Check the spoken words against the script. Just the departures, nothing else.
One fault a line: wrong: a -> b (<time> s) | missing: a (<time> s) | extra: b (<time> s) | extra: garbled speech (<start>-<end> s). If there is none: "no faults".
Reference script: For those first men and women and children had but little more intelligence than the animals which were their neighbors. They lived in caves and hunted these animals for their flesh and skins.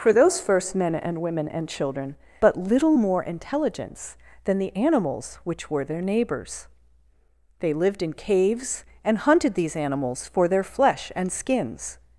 missing: had (2.1 s)